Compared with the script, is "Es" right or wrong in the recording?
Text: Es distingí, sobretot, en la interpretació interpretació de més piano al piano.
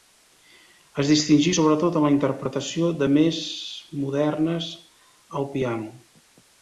right